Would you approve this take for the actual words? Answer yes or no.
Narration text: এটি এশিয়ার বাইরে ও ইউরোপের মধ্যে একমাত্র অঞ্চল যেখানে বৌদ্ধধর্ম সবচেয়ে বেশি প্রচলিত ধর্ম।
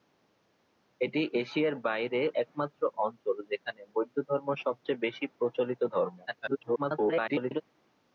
no